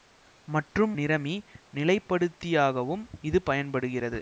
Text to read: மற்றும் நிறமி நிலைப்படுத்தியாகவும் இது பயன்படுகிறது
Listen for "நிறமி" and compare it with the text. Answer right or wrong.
right